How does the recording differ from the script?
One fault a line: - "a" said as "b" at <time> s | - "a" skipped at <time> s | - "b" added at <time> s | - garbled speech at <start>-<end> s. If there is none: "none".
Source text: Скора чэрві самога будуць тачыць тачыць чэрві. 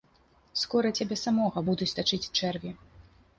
- "чэрві" said as "цябе" at 1.0 s
- "тачыць" skipped at 2.2 s